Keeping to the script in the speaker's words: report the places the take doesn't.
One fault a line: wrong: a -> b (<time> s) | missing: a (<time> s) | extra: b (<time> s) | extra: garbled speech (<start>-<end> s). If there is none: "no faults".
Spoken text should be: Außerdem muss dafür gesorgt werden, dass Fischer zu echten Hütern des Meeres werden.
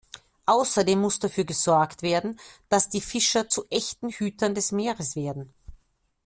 extra: die (2.9 s)